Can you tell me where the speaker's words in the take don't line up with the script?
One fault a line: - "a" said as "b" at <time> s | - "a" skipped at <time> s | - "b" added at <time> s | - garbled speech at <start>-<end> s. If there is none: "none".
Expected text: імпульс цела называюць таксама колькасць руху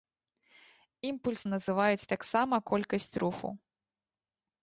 - "цела" skipped at 1.4 s